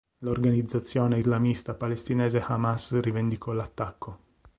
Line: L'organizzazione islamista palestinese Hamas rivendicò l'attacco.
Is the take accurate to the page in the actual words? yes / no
yes